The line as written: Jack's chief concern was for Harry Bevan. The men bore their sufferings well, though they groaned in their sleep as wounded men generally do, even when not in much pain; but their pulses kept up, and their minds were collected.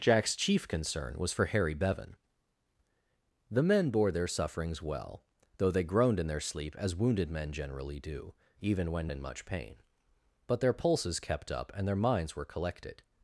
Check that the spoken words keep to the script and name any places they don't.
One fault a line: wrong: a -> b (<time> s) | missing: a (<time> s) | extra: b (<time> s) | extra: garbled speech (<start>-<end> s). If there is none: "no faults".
missing: not (9.1 s)